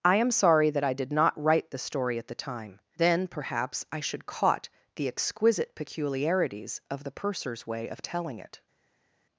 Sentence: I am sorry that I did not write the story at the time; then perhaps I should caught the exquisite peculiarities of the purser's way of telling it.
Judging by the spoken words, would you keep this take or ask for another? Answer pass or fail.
pass